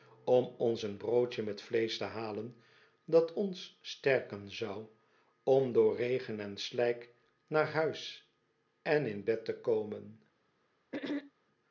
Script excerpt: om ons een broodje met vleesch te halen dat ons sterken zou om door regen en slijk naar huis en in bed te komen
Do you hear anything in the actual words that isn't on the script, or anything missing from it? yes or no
no